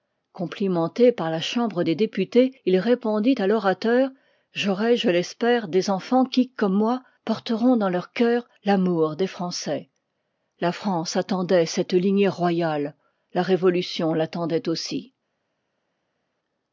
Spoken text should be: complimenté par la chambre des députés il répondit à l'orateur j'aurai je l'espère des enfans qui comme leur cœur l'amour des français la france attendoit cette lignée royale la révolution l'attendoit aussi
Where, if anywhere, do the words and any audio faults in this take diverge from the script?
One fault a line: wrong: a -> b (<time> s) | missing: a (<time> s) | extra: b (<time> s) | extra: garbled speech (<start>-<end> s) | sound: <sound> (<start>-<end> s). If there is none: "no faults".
extra: moi porteront dans (6.7 s)